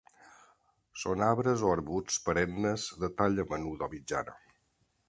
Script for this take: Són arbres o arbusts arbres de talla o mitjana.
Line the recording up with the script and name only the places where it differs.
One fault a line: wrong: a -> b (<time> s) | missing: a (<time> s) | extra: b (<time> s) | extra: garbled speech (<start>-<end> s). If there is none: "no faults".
wrong: arbres -> perennes (2.3 s)
extra: menuda (3.5 s)